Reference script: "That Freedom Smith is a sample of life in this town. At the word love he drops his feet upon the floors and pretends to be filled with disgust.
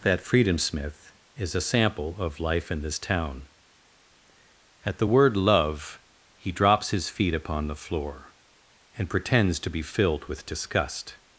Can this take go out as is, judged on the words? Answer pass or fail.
fail